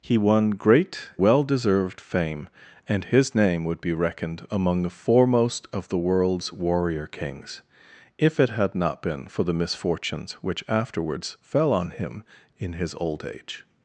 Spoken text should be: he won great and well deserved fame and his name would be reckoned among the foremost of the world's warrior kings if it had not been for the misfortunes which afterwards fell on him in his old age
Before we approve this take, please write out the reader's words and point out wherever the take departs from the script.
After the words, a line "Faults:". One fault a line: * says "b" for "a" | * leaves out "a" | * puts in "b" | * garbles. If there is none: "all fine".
he won great well deserved fame and his name would be reckoned among the foremost of the world's warrior kings if it had not been for the misfortunes which afterwards fell on him in his old age
Faults:
* leaves out "and"